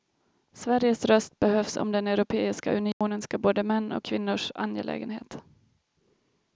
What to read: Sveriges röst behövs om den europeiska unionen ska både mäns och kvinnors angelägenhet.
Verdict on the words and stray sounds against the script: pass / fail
fail